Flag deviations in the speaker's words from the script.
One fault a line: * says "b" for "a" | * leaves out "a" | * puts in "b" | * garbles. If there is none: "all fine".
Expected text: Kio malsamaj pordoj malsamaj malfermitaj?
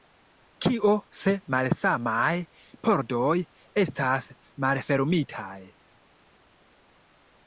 * puts in "se"
* says "estas" for "malsamaj"